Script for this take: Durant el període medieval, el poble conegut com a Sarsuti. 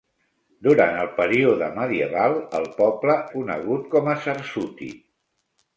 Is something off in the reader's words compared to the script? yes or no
no